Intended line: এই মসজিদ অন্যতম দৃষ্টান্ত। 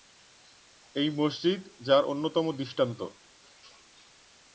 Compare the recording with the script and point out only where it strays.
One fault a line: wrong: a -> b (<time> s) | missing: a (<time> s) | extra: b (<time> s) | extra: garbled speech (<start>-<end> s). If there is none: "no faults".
extra: যার (1.9 s)